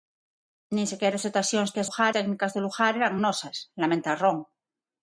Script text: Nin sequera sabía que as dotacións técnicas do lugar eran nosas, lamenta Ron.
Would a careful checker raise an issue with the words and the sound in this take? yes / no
yes